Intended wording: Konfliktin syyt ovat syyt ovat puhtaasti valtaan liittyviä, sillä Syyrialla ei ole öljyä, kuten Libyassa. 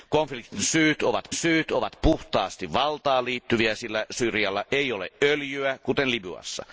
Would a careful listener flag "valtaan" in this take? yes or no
no